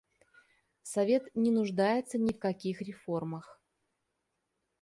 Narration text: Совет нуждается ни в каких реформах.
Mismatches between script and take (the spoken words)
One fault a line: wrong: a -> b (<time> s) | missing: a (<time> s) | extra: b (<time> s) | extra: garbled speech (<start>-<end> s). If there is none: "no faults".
extra: не (1.4 s)